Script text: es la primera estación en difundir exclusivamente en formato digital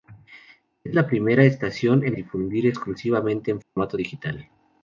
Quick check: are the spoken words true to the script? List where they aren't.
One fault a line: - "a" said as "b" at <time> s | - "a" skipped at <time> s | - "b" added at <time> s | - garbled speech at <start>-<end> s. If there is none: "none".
none